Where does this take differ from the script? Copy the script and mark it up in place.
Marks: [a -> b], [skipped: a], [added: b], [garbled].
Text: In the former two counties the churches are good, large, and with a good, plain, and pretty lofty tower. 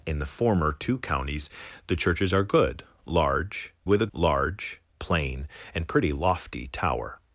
In the former two counties the churches are good, large, [skipped: and] with a [good, -> large] plain, and pretty lofty tower.